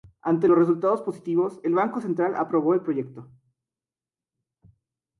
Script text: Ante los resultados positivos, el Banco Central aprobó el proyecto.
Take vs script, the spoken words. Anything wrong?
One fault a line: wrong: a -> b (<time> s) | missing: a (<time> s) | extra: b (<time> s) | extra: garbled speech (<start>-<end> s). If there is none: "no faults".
no faults